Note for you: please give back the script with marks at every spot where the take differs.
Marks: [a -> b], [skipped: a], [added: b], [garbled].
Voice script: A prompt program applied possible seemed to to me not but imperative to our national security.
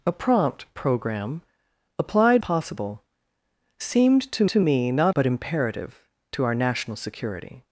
A prompt program applied possible seemed to to me not but imperative to our national security.